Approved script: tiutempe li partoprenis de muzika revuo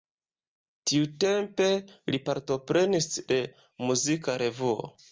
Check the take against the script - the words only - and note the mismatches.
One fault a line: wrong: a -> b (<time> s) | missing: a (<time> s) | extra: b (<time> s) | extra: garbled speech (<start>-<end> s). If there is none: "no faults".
no faults